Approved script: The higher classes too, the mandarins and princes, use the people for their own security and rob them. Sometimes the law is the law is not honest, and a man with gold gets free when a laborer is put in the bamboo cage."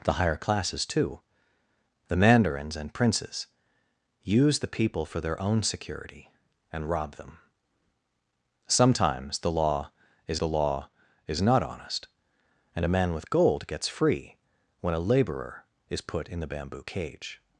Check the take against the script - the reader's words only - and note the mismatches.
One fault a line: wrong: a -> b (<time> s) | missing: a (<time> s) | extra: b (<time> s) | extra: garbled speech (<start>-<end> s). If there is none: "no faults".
no faults